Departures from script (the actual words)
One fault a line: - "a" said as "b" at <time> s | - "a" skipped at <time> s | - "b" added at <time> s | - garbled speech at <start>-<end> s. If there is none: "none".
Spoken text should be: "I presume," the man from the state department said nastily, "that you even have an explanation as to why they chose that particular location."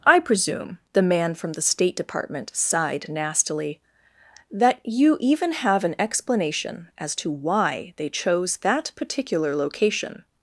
- "said" said as "sighed" at 2.5 s